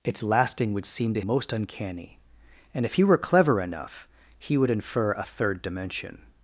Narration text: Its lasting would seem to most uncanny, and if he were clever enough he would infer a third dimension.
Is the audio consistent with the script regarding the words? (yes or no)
yes